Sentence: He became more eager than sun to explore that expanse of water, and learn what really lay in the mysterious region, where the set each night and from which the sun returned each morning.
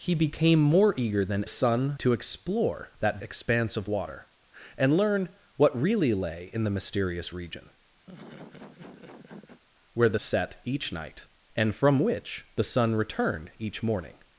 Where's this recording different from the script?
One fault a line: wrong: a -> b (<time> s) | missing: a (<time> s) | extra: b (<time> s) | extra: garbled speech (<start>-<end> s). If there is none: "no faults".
no faults